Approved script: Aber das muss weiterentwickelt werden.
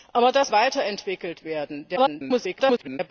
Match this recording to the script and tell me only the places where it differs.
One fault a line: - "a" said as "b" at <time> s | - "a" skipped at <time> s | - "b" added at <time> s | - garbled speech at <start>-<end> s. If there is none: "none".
- "muss" skipped at 0.5 s
- garbled speech at 2.0-3.0 s